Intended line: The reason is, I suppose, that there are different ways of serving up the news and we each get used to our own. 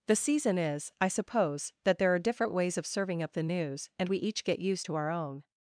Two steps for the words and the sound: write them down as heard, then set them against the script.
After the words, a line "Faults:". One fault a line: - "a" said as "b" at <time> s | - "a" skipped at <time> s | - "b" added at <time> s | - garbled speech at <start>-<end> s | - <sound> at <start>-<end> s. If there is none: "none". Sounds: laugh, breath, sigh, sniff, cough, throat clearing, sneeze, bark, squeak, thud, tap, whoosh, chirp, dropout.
The season is, I suppose, that there are different ways of serving up the news and we each get used to our own.
Faults:
- "reason" said as "season" at 0.1 s